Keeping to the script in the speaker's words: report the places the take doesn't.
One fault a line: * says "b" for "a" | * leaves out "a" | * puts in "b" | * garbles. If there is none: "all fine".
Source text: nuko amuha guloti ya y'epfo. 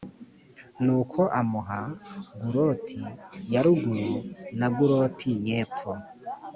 * puts in "ruguru na guloti"